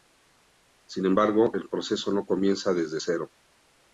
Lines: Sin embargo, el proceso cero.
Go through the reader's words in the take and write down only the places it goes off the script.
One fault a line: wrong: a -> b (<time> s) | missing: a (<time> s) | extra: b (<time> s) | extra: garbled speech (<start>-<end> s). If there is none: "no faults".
extra: no comienza desde (2.1 s)